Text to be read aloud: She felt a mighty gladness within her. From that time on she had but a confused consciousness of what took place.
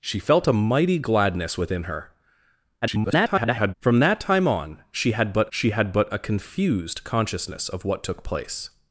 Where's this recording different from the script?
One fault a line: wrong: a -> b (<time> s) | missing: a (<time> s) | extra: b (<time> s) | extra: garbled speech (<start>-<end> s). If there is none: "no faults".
extra: garbled speech (2.8-3.7 s)
extra: she had but (5.5 s)